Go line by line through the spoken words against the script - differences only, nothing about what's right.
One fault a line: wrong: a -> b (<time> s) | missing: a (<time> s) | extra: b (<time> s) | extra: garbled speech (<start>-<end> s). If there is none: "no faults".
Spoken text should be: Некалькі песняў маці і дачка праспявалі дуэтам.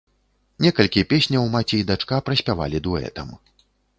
no faults